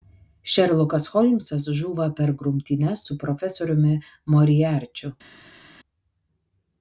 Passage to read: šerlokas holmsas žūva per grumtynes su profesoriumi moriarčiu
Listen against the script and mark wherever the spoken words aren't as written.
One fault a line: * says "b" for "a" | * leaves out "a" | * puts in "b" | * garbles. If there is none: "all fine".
all fine